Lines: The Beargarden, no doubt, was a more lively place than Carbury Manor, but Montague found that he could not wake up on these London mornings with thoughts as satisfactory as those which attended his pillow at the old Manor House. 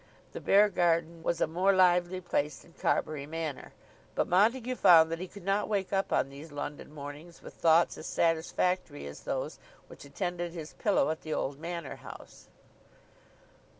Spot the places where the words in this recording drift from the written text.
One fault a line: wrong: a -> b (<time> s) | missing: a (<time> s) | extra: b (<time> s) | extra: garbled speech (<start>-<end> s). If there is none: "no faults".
missing: no doubt (1.2 s)